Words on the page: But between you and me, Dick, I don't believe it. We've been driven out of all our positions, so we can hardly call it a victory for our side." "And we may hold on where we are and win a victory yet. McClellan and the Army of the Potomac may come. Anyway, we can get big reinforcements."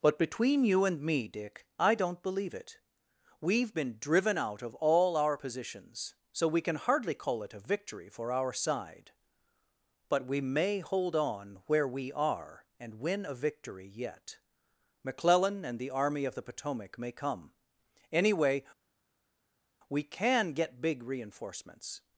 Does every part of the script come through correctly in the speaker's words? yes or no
no